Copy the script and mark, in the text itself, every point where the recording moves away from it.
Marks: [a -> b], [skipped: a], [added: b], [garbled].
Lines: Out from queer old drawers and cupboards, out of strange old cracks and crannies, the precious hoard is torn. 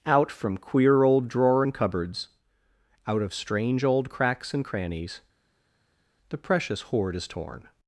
Out from queer old [drawers -> drawer] and cupboards, out of strange old cracks and crannies, the precious hoard is torn.